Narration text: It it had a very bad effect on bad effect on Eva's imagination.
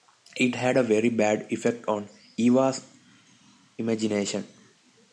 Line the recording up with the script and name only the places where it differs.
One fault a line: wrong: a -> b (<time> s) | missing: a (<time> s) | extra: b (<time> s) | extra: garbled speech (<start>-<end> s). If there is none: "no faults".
missing: it (0.6 s)
missing: bad effect on (2.1 s)